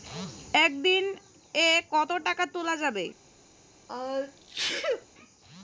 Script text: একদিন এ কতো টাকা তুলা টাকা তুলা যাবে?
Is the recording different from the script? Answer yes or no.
yes